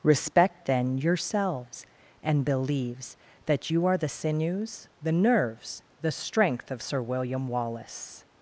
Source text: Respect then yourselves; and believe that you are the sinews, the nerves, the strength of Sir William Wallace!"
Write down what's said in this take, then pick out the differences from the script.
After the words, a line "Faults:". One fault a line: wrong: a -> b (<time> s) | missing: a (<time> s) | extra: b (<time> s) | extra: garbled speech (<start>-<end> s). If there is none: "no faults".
Respect then yourselves; and believes that you are the sinews, the nerves, the strength of Sir William Wallace!"
Faults:
wrong: believe -> believes (2.5 s)